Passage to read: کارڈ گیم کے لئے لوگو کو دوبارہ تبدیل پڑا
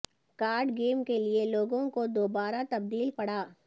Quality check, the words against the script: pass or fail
pass